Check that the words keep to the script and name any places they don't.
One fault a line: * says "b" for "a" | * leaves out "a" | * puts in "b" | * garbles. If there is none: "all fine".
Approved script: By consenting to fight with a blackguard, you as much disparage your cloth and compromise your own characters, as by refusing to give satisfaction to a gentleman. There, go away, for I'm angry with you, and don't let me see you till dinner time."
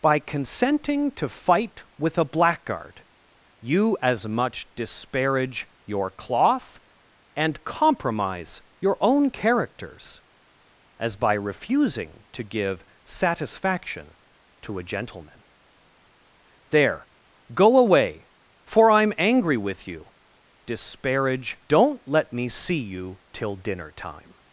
* says "disparage" for "and"